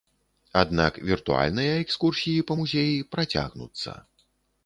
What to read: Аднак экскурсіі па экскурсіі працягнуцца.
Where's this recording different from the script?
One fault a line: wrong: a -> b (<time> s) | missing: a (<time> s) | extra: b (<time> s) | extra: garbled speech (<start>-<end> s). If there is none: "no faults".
extra: віртуальныя (1.1 s)
wrong: экскурсіі -> музеі (2.6 s)